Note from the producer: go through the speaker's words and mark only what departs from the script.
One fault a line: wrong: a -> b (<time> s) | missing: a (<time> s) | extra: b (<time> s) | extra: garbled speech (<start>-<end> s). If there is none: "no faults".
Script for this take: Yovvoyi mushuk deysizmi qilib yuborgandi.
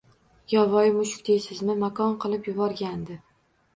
extra: makon (1.9 s)